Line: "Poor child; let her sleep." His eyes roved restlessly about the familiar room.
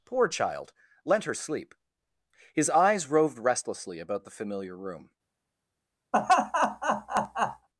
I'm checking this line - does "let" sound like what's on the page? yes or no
no